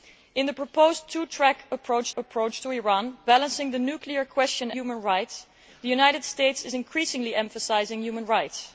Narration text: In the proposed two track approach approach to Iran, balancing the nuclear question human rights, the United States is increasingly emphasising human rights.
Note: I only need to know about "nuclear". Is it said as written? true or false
true